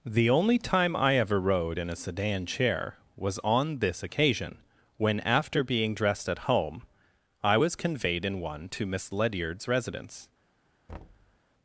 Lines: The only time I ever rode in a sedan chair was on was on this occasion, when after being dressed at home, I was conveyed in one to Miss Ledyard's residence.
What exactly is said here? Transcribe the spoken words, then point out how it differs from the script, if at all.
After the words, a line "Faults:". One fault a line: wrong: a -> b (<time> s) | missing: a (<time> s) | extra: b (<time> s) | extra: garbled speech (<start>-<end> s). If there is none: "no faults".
The only time I ever rode in a sedan chair was on this occasion, when after being dressed at home, I was conveyed in one to Miss Ledyard's residence.
Faults:
missing: was on (3.8 s)